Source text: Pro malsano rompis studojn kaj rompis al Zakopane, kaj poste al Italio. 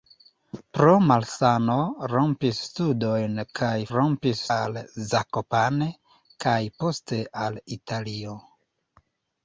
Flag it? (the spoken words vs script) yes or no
no